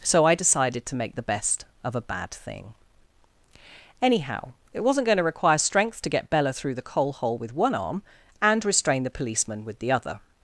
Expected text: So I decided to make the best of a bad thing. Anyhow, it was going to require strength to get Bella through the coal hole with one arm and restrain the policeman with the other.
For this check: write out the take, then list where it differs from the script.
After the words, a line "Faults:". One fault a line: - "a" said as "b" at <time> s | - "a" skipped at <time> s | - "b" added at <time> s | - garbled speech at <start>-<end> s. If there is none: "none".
So I decided to make the best of a bad thing. Anyhow, it wasn't going to require strength to get Bella through the coal hole with one arm and restrain the policeman with the other.
Faults:
- "was" said as "wasn't" at 4.8 s